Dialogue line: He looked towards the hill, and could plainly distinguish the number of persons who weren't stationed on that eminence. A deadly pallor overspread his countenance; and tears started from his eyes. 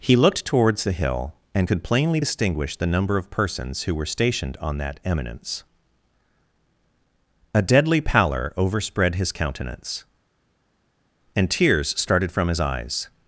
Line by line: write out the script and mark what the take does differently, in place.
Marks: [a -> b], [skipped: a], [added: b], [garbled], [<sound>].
He looked towards the hill, and could plainly distinguish the number of persons who [weren't -> were] stationed on that eminence. A deadly pallor overspread his countenance; and tears started from his eyes.